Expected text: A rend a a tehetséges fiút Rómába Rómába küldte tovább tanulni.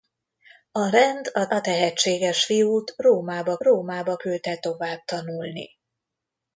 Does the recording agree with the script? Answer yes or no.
yes